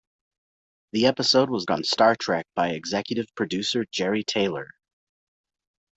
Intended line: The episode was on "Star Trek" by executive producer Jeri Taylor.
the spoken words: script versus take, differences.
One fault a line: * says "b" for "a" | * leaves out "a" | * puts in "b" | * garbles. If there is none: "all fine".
all fine